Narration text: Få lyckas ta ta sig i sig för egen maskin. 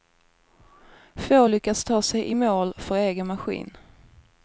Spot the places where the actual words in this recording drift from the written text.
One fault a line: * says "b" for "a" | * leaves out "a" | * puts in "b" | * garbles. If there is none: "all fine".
* leaves out "ta"
* says "mål" for "sig"